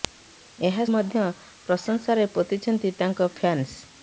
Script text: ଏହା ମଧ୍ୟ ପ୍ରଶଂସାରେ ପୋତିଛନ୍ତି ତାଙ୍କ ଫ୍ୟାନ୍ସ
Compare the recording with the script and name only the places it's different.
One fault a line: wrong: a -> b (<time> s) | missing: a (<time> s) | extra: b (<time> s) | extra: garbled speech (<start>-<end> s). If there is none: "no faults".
no faults